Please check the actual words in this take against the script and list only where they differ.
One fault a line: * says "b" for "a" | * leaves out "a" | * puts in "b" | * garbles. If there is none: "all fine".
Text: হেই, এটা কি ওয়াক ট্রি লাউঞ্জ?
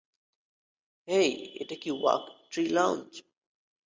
all fine